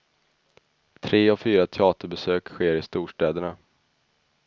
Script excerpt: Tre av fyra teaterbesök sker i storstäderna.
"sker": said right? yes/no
yes